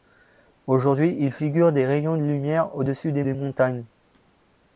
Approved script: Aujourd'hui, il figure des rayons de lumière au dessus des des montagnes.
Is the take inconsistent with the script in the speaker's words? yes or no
no